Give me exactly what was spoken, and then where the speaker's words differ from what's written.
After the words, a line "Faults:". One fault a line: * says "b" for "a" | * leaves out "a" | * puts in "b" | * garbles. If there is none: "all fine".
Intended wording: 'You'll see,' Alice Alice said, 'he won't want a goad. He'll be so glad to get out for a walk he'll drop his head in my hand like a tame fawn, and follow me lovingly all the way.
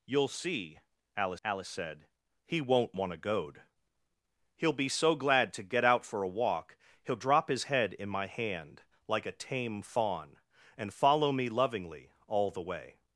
'You'll see,' Alice Alice said, 'he won't want a goad. He'll be so glad to get out for a walk he'll drop his head in my hand like a tame fawn, and follow me lovingly all the way.
Faults:
all fine